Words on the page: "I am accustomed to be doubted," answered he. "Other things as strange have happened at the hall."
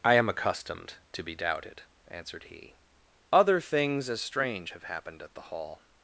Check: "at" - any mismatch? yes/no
no